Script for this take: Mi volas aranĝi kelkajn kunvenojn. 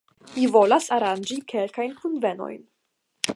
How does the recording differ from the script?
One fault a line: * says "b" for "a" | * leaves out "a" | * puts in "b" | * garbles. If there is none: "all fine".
all fine